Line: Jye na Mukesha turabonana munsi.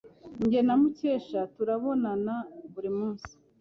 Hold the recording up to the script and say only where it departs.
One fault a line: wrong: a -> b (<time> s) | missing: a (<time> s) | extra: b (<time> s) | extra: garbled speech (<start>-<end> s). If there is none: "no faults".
extra: buri (2.7 s)